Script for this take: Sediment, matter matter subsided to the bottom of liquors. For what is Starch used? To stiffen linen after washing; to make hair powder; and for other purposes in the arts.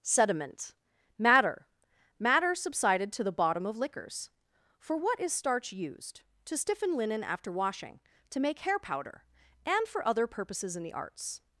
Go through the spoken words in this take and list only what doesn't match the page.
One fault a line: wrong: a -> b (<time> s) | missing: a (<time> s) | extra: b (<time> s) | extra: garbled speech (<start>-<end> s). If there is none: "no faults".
no faults